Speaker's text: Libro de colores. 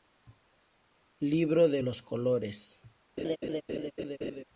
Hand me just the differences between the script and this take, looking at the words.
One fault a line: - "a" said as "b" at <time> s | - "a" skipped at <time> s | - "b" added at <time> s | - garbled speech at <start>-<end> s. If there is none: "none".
- "los" added at 1.8 s